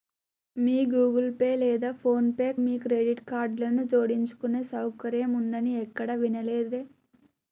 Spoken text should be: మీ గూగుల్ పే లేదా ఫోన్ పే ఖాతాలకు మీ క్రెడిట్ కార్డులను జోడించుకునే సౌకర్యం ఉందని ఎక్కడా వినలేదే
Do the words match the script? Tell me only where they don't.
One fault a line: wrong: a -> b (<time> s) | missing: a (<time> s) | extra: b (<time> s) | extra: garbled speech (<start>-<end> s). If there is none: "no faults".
missing: ఖాతాలకు (2.5 s)